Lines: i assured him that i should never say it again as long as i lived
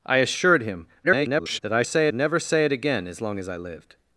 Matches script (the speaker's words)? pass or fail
fail